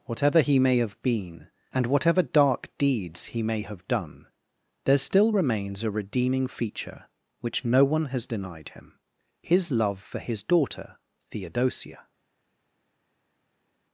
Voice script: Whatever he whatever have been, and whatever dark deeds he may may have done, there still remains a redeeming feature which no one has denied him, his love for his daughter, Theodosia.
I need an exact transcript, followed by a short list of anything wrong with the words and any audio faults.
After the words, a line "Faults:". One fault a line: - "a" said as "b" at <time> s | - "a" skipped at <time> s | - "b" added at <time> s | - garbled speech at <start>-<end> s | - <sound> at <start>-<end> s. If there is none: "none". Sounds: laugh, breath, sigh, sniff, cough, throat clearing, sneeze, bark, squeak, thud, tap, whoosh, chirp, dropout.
Whatever he may have been, and whatever dark deeds he may have done, there still remains a redeeming feature which no one has denied him, his love for his daughter, Theodosia.
Faults:
- "whatever" said as "may" at 0.6 s
- "may" skipped at 3.6 s